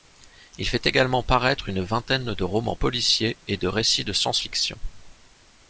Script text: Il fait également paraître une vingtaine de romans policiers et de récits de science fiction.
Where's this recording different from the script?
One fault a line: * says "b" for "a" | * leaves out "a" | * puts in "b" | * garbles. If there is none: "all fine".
all fine